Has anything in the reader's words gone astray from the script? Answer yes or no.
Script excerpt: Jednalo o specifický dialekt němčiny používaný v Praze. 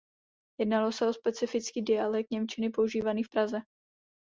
yes